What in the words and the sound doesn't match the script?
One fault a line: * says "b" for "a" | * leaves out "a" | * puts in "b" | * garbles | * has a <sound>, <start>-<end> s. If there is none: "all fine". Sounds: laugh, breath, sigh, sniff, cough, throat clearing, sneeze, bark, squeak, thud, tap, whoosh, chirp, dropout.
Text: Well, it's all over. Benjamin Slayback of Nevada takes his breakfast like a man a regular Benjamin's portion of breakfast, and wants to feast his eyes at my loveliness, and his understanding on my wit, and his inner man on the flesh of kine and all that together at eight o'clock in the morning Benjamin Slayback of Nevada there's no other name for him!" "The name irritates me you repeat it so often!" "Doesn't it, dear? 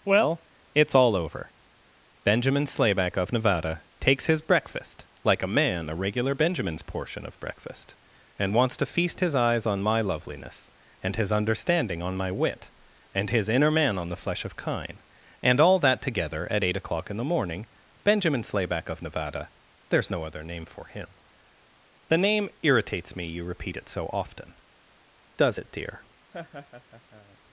* says "on" for "at"
* says "Does" for "Doesn't"
* has a laugh, 26.3-27.4 s